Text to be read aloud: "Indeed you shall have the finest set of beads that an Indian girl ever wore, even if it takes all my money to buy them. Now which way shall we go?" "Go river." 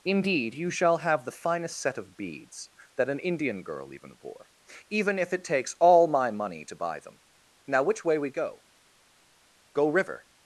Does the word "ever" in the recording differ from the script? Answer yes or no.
yes